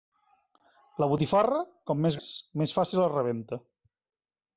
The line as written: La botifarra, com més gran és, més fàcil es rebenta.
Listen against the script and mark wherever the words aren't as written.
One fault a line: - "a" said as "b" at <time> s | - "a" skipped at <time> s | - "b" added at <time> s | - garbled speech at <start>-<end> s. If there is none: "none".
- "gran" skipped at 2.2 s